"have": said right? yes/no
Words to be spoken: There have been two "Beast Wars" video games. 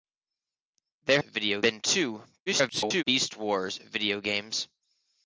no